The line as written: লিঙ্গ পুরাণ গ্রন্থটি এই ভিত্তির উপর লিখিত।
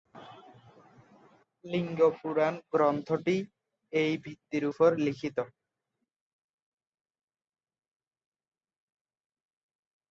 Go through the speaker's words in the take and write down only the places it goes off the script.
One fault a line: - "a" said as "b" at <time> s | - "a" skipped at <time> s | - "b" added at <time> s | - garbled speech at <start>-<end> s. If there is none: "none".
none